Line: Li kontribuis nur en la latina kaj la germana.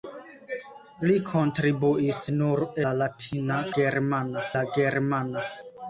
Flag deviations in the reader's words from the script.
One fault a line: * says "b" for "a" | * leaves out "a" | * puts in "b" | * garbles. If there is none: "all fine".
* leaves out "en"
* says "germana" for "kaj"